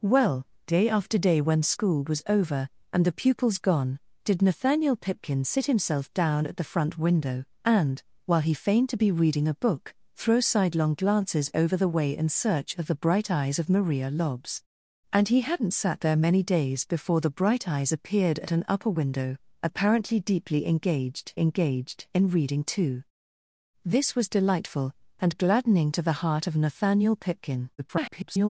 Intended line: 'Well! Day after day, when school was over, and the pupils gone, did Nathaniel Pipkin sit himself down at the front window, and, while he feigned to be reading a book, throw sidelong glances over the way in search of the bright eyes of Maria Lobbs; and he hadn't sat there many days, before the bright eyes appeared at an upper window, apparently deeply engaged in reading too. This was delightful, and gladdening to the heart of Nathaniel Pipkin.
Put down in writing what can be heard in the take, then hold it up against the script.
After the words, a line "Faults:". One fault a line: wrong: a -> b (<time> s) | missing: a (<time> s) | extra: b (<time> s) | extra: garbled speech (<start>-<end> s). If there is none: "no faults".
'Well! Day after day, when school was over, and the pupils gone, did Nathaniel Pipkin sit himself down at the front window, and, while he feigned to be reading a book, throw sidelong glances over the way in search of the bright eyes of Maria Lobbs; and he hadn't sat there many days, before the bright eyes appeared at an upper window, apparently deeply engaged engaged in reading too. This was delightful, and gladdening to the heart of Nathaniel Pipkin. [garbled]
Faults:
extra: engaged (21.4 s)
extra: garbled speech (27.8-28.5 s)